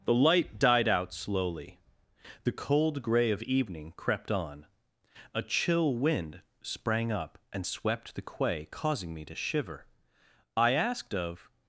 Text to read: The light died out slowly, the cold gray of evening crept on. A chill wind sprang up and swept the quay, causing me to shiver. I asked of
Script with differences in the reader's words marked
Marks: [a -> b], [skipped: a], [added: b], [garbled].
The light died out slowly, the cold gray of evening crept on. A chill wind sprang up and swept the quay, causing me to shiver. I asked of